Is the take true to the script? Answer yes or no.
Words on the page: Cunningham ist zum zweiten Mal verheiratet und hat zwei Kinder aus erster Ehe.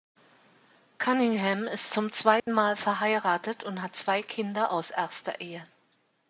yes